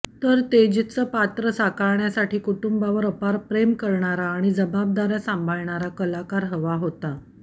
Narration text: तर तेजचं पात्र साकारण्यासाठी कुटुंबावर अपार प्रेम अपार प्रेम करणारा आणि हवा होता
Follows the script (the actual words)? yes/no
no